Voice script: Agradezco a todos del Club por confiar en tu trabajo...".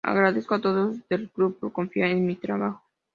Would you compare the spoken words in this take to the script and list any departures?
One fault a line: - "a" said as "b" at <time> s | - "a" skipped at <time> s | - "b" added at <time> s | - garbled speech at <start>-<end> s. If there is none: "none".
- "tu" said as "mi" at 2.3 s